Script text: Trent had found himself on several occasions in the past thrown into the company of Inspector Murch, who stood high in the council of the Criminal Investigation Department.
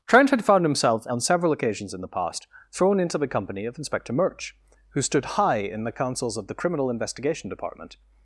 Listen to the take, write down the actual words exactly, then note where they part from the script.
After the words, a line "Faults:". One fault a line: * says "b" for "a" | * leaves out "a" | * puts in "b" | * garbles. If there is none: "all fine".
Trent had found himself on several occasions in the past thrown into the company of Inspector Murch, who stood high in the councils of the Criminal Investigation Department.
Faults:
* says "councils" for "council"